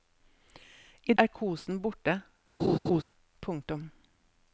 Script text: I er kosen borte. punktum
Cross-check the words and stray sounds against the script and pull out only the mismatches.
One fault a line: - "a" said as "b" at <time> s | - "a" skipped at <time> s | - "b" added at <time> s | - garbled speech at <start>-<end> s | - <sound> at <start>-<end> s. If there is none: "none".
- laugh at 2.6-3.0 s